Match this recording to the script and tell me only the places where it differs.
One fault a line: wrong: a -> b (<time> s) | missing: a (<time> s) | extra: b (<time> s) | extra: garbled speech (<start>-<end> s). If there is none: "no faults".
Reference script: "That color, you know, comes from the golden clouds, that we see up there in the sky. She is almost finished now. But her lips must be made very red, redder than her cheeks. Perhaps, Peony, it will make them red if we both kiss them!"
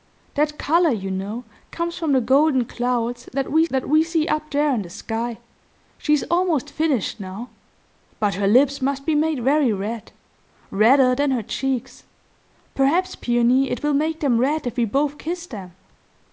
extra: that we (3.7 s)